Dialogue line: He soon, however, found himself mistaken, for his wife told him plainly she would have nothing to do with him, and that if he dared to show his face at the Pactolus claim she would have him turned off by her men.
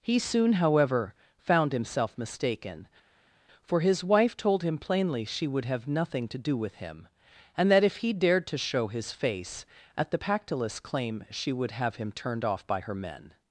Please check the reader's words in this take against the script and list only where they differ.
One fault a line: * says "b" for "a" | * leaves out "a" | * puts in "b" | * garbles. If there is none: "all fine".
all fine